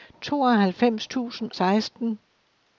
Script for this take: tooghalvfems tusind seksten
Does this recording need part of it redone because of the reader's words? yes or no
no